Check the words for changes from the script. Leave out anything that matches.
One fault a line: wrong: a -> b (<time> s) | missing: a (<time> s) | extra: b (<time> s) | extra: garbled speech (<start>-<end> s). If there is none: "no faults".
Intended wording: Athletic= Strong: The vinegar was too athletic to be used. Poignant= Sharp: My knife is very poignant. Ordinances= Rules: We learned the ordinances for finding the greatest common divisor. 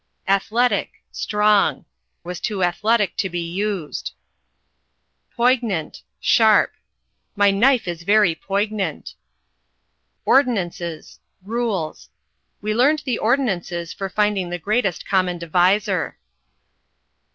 missing: The vinegar (1.9 s)